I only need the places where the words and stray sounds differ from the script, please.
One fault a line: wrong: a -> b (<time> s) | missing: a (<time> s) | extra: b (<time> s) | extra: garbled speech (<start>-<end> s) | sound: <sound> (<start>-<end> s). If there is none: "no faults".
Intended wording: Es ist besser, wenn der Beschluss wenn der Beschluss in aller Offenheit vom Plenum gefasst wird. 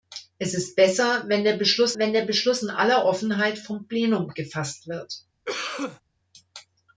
sound: cough (5.5-6.0 s)